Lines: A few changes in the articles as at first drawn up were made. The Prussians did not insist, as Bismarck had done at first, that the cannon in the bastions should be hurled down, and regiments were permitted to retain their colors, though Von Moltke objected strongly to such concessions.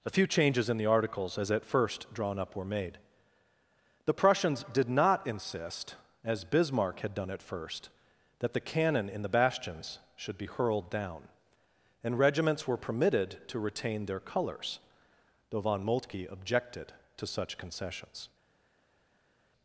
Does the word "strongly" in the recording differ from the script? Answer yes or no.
yes